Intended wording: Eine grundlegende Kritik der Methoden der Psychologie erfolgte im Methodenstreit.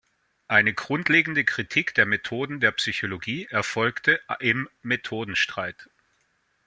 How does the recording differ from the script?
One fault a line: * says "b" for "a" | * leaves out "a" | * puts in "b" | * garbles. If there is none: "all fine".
all fine